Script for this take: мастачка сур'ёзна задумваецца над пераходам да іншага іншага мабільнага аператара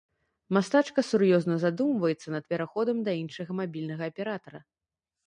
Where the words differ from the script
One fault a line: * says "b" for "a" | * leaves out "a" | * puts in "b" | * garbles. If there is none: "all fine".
* leaves out "іншага"